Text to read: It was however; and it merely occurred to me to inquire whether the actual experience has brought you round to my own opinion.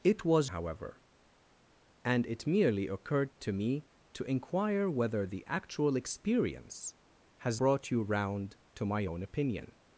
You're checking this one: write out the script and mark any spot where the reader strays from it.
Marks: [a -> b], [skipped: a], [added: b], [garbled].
It was however; and it merely occurred to me to inquire whether the actual experience has brought you round to my own opinion.